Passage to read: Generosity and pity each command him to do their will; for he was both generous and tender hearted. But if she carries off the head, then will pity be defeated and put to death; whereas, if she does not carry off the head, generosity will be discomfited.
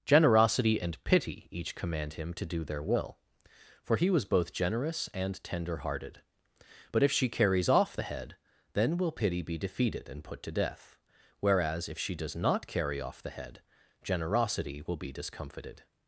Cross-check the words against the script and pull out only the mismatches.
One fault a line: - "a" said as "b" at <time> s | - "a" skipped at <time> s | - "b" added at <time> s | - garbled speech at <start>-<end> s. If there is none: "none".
none